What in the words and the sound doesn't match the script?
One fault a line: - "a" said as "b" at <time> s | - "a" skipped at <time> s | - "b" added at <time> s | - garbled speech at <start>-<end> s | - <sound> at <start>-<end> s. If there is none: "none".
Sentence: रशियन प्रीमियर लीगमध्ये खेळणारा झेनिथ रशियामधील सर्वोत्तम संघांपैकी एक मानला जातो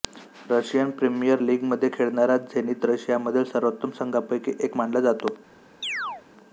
- chirp at 5.8-6.2 s